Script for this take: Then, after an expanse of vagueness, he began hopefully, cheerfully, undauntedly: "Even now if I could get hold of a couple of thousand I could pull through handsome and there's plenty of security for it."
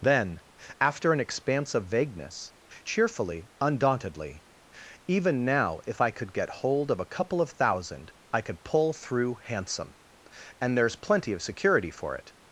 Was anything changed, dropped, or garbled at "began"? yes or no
yes